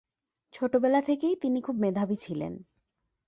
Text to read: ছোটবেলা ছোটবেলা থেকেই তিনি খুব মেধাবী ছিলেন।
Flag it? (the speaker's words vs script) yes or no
yes